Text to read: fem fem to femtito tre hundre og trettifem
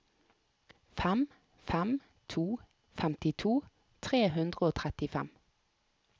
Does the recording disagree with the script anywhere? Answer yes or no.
no